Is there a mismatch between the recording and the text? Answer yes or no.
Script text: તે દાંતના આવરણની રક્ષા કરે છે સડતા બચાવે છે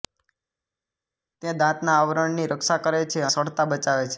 no